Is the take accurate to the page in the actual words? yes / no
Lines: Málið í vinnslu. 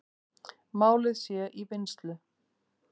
no